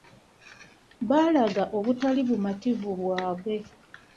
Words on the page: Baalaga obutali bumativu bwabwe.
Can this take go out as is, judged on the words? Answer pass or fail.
pass